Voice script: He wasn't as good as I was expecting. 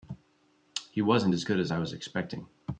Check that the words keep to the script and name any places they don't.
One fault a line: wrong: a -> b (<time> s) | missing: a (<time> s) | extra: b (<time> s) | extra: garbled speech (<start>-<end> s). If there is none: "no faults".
no faults